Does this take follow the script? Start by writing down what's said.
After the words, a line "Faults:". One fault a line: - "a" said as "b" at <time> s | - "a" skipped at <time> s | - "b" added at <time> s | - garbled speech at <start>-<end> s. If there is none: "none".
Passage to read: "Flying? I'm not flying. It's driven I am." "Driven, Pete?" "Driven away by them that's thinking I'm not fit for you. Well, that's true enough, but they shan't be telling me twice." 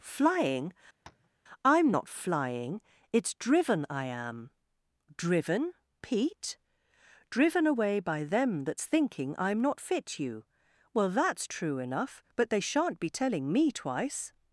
"Flying? I'm not flying. It's driven I am." "Driven, Pete?" "Driven away by them that's thinking I'm not fit you. Well, that's true enough, but they shan't be telling me twice."
Faults:
- "for" skipped at 10.2 s